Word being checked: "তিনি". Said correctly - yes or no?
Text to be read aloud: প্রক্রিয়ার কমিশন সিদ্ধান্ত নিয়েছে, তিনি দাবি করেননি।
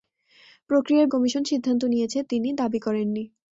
yes